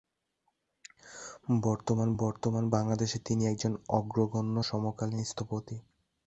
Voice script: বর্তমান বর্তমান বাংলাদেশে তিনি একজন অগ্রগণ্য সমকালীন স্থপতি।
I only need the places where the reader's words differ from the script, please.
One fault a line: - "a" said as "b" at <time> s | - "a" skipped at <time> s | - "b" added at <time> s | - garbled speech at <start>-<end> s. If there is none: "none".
none